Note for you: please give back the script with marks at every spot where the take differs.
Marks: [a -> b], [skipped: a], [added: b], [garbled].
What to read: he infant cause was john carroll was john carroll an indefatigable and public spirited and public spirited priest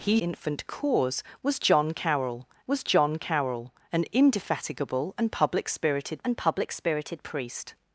he infant cause was john carroll was john carroll an indefatigable and public spirited and public spirited priest